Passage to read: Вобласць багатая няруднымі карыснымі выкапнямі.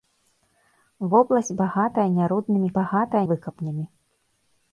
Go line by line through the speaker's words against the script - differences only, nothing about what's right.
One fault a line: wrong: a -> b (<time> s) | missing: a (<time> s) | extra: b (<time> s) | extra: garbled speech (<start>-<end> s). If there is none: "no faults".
wrong: карыснымі -> багатая (2.8 s)